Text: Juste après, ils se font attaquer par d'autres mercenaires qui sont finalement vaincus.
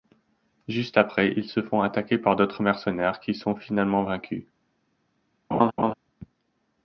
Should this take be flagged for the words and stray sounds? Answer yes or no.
yes